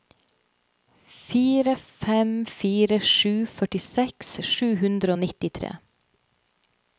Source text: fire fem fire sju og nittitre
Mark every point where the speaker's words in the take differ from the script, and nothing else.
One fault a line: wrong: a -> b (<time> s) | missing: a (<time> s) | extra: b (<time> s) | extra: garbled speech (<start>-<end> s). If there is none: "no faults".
extra: førtiseks sju hundre (3.6 s)